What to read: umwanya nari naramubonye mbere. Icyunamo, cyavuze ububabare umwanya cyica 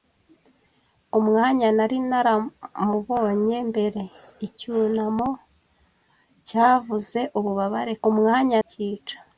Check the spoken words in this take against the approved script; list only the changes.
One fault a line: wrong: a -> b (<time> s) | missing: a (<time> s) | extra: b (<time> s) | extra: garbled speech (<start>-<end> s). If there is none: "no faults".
no faults